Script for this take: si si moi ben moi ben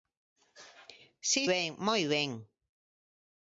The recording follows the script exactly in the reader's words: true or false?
false